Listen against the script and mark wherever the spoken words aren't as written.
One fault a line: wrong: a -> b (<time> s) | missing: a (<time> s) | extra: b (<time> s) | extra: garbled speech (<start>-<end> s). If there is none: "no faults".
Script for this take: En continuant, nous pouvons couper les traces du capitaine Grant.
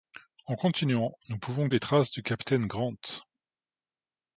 missing: couper (1.7 s)